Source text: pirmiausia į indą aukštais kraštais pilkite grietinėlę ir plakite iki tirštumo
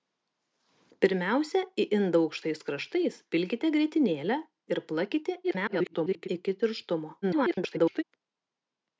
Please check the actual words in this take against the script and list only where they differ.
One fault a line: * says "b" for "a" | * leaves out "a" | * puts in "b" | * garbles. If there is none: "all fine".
* garbles
* garbles